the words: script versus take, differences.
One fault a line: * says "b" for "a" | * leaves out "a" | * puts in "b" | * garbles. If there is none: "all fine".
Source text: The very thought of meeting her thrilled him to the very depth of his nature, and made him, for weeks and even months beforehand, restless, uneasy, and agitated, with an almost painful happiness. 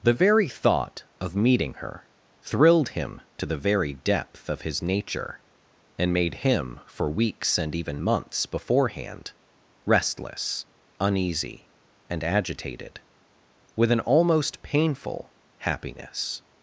all fine